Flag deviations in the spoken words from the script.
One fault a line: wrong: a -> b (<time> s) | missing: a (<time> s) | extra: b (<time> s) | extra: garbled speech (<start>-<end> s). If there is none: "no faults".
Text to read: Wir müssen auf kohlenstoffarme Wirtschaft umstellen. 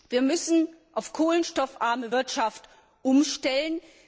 no faults